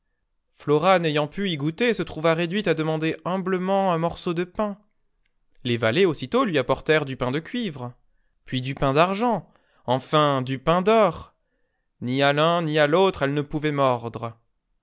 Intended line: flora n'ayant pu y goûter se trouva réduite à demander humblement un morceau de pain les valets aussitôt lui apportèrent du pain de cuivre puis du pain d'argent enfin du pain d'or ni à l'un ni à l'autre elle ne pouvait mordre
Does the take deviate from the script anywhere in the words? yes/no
no